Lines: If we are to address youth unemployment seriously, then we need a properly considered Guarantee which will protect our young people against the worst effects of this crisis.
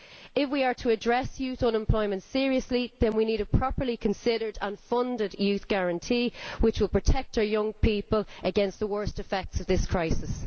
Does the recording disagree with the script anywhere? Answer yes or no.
yes